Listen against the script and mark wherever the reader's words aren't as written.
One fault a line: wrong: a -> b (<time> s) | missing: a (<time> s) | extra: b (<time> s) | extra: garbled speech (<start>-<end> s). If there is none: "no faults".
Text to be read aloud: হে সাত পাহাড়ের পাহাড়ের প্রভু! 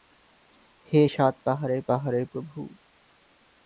no faults